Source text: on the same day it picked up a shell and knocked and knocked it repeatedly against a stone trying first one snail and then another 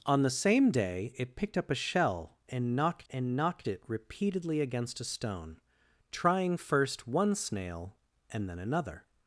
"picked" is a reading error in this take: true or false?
false